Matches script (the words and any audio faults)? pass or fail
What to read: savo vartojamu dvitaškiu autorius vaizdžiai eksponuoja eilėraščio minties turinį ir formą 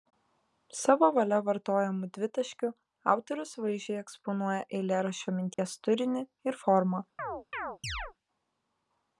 fail